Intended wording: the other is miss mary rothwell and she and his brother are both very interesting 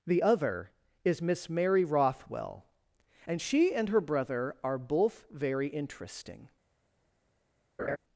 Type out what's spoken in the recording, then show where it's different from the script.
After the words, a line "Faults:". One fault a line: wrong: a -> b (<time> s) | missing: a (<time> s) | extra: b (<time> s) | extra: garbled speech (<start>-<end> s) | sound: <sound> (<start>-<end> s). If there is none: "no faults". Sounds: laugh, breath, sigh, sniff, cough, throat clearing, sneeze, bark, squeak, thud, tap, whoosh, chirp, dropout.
the other is miss mary rothwell and she and her brother are both very interesting
Faults:
wrong: his -> her (3.9 s)
sound: laugh (7.8-8.0 s)